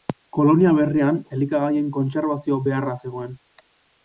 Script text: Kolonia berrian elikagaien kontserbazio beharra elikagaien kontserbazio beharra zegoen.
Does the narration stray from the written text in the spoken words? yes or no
yes